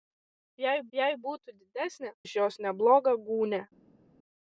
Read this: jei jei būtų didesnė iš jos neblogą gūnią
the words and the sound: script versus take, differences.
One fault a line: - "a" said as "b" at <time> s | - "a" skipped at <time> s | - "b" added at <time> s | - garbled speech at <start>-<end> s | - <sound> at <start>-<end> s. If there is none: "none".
none